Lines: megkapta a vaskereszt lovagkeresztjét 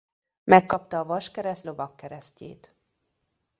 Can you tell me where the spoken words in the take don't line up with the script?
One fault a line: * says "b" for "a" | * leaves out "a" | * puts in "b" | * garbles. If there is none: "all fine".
all fine